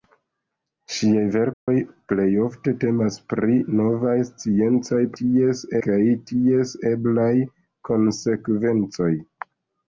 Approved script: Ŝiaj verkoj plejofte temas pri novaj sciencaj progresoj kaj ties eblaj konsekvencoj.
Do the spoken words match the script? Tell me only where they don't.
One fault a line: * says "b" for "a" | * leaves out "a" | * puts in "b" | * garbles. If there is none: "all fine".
* says "ties" for "progresoj"